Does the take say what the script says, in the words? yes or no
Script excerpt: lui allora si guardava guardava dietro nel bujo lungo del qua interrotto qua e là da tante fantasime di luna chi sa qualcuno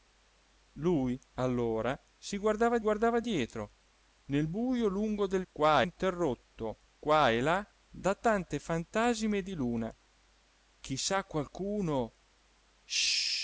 yes